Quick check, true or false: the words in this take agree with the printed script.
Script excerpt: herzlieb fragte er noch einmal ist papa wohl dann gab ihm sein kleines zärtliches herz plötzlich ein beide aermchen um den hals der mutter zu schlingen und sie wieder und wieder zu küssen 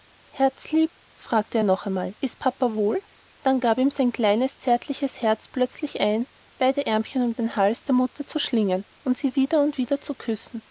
true